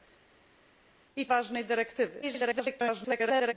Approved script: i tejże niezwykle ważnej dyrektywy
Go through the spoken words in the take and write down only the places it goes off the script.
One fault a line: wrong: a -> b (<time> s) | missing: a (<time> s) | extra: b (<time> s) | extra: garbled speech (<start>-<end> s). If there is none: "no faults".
missing: tejże niezwykle (1.3 s)
extra: garbled speech (2.2-3.5 s)